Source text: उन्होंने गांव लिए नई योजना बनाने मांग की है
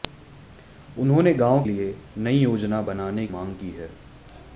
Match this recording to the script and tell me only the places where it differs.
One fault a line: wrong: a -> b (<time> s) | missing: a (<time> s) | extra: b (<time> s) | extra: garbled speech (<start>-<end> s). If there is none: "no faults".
no faults